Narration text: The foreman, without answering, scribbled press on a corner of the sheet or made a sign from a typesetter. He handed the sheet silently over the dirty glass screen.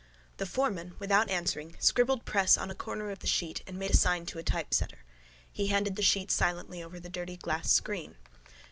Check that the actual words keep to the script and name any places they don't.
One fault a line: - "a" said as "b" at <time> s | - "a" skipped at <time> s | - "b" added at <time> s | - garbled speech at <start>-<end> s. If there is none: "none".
- "or" said as "and" at 3.7 s
- "from" said as "to" at 4.3 s